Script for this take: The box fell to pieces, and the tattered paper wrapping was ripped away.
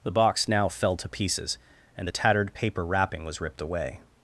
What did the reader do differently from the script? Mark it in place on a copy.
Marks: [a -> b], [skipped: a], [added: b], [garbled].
The box [added: now] fell to pieces, and the tattered paper wrapping was ripped away.